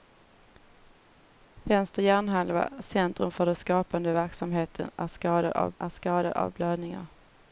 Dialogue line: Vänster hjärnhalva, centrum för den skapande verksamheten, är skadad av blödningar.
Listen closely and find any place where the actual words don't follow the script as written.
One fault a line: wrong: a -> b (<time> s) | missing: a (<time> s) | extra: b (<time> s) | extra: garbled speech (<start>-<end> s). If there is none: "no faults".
extra: är skadad av (5.8 s)